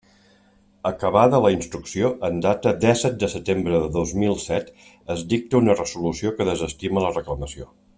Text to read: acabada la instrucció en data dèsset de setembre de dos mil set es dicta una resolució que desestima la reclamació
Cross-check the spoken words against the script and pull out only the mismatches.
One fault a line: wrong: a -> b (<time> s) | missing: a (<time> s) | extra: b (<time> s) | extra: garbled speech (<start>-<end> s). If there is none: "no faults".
no faults